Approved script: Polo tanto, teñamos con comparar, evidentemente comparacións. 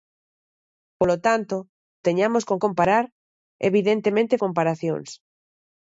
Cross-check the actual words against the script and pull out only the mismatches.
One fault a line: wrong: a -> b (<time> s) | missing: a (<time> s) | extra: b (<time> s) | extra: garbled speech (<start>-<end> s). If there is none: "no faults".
no faults